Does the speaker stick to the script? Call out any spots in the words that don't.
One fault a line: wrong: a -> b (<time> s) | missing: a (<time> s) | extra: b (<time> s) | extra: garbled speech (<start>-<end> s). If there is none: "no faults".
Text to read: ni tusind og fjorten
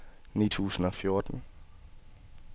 no faults